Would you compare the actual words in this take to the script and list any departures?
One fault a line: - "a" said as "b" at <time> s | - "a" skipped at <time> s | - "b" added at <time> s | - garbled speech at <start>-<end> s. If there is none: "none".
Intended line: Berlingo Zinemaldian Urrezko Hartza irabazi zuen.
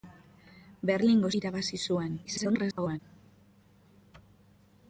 - "Zinemaldian Urrezko Hartza" skipped at 1.3 s
- garbled speech at 2.2-3.0 s